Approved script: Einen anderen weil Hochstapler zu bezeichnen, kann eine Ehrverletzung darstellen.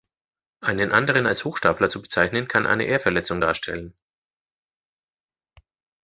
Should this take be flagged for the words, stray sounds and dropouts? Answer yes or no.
yes